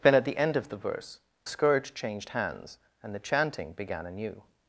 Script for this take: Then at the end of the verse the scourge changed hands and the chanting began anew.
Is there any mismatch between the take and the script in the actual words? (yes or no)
yes